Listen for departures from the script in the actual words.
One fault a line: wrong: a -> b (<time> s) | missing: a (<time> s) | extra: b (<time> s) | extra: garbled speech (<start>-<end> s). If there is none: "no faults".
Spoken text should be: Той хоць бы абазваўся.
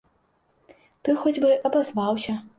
no faults